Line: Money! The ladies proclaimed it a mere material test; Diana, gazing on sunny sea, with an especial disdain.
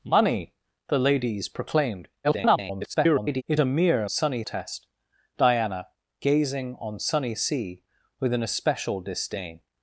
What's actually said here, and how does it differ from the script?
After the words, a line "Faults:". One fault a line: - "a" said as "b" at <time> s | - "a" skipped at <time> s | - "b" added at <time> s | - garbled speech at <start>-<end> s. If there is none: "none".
Money! The ladies proclaimed [garbled] it a mere sunny test; Diana, gazing on sunny sea, with an especial disdain.
Faults:
- garbled speech at 2.2-3.4 s
- "material" said as "sunny" at 4.1 s